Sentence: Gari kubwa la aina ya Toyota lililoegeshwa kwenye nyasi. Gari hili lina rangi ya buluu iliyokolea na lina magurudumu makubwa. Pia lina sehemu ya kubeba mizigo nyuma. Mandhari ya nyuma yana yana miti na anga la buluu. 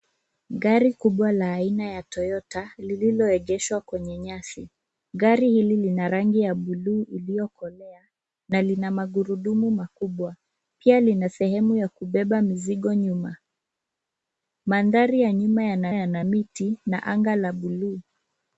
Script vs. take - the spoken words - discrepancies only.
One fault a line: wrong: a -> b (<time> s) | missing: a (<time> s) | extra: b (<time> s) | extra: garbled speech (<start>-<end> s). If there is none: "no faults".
no faults